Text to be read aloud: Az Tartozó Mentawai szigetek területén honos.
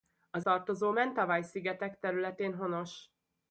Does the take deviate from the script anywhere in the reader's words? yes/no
no